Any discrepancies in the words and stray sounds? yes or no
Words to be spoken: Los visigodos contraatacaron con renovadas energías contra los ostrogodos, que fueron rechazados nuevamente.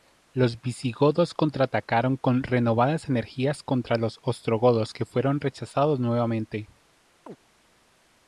yes